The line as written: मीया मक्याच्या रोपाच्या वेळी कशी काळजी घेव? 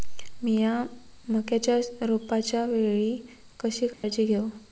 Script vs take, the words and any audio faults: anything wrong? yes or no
yes